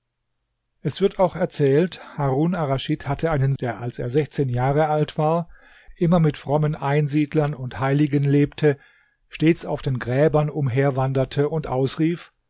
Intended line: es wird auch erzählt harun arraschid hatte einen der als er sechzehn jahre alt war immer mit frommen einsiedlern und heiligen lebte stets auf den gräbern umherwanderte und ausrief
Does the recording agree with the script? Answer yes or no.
yes